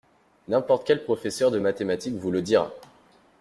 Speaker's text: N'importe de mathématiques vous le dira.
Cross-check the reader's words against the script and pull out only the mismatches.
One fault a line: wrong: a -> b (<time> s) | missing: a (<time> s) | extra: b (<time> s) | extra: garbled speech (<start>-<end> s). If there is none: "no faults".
extra: quel professeur (0.9 s)